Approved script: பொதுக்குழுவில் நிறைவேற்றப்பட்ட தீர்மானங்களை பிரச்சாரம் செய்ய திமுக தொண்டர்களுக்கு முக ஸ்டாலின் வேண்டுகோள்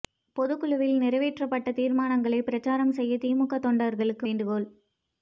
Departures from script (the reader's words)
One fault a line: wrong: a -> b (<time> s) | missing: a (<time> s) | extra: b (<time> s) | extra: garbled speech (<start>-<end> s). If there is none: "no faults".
missing: முக ஸ்டாலின் (4.3 s)